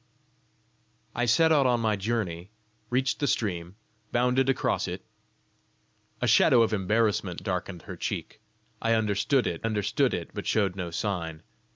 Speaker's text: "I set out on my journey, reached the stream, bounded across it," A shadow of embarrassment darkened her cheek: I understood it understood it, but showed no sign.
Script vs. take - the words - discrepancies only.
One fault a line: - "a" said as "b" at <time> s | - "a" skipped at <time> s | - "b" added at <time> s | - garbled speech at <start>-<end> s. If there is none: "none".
none